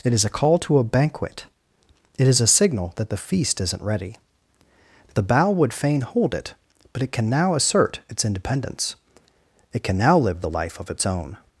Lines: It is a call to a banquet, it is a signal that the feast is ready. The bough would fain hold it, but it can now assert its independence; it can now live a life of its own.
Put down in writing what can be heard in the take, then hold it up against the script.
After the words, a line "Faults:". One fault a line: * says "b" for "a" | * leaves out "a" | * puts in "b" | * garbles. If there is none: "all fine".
It is a call to a banquet, it is a signal that the feast isn't ready. The bough would fain hold it, but it can now assert its independence; it can now live the life of its own.
Faults:
* says "isn't" for "is"
* says "the" for "a"